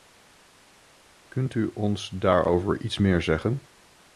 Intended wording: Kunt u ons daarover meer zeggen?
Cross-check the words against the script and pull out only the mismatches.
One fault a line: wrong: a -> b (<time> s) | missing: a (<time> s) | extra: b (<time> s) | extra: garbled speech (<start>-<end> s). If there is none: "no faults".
extra: iets (2.8 s)